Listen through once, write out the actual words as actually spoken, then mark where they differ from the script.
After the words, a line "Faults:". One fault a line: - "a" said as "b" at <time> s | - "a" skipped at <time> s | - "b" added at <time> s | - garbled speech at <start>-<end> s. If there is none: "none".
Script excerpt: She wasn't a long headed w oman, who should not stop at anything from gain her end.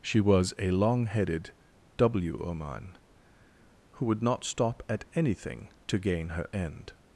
She was a long headed w oman, who would not stop at anything to gain her end.
Faults:
- "wasn't" said as "was" at 0.2 s
- "should" said as "would" at 4.1 s
- "from" said as "to" at 5.8 s